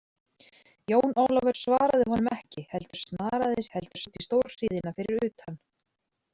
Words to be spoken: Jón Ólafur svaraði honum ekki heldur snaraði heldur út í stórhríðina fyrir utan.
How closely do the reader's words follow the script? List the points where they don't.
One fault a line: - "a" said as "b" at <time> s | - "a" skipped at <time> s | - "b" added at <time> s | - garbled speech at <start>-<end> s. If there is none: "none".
none